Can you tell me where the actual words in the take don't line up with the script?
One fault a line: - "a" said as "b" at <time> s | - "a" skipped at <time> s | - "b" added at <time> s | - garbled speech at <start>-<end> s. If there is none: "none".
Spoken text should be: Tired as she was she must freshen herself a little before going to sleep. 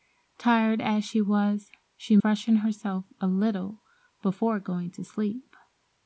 - "must" skipped at 2.2 s